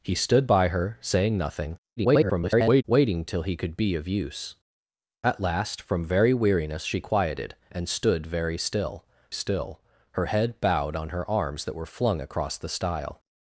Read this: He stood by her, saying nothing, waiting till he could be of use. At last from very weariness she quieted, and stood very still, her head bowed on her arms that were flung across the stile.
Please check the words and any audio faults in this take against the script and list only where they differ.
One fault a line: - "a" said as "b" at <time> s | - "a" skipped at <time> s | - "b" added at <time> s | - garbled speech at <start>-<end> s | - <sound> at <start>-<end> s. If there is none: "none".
- garbled speech at 2.0-2.8 s
- "still" added at 9.3 s